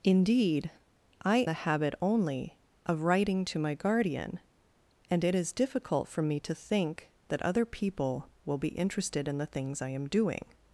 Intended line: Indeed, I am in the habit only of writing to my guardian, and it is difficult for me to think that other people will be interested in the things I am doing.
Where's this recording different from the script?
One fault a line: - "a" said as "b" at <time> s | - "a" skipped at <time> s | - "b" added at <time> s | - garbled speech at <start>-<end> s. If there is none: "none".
- "am in" skipped at 1.4 s